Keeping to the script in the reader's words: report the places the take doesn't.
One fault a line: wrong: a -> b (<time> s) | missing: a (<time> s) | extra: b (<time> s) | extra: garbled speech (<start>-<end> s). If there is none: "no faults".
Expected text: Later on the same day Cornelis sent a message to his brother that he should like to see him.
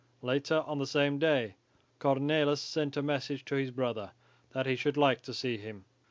no faults